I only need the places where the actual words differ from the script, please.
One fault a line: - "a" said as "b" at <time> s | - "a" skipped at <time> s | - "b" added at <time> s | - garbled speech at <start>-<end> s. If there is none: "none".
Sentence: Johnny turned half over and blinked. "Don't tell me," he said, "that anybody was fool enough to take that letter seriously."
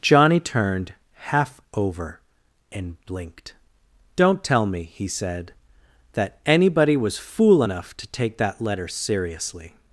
none